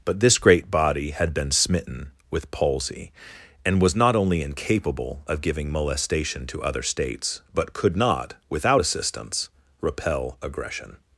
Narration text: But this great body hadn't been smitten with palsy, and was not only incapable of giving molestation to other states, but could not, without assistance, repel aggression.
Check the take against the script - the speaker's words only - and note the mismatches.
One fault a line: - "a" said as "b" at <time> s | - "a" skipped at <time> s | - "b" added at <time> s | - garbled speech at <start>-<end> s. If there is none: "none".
- "hadn't" said as "had" at 1.1 s